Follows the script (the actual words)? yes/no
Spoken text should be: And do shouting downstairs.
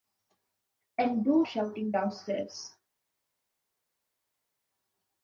yes